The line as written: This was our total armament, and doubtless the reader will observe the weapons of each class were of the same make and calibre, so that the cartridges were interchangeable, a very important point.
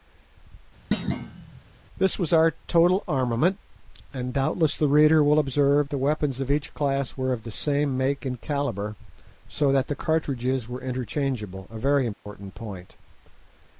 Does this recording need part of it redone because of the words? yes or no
no